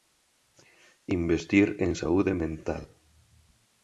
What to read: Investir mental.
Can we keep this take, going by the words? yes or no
no